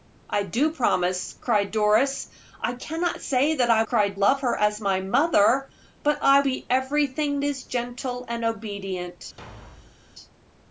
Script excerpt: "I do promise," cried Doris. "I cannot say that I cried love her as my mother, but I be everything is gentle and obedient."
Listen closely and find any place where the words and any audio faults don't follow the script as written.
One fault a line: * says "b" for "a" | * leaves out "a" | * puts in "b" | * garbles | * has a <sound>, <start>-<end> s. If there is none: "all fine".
* has a thud, 9.4-10.0 s